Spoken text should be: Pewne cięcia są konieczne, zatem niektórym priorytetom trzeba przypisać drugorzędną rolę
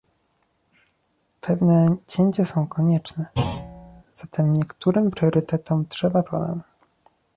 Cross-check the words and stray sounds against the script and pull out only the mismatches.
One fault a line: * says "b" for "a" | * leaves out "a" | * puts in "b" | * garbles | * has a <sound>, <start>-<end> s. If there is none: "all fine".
* has a thud, 3.3-4.0 s
* leaves out "przypisać drugorzędną"